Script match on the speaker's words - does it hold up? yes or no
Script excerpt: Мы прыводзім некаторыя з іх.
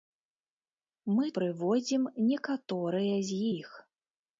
yes